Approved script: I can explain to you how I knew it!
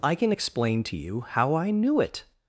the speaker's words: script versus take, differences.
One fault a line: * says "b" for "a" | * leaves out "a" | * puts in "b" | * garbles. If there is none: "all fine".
all fine